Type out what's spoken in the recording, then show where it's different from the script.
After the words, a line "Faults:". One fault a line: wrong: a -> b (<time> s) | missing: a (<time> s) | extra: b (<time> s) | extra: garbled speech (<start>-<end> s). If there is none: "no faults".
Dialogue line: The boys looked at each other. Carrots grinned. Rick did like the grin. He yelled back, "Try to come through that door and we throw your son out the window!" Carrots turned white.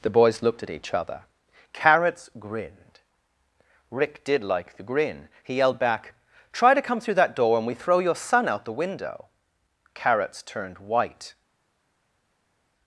The boys looked at each other. Carrots grinned. Rick did like the grin. He yelled back, "Try to come through that door and we throw your son out the window!" Carrots turned white.
Faults:
no faults